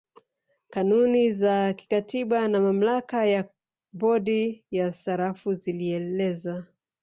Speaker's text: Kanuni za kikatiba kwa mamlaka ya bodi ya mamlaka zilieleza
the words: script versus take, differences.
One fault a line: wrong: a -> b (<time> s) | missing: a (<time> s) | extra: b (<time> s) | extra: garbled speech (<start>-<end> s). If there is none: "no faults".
wrong: kwa -> na (2.5 s)
wrong: mamlaka -> sarafu (4.9 s)